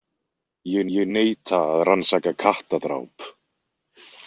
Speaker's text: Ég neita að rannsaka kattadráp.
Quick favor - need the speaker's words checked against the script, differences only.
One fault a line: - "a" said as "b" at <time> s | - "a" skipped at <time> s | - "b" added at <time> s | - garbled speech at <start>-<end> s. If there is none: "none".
- "ég" added at 1.0 s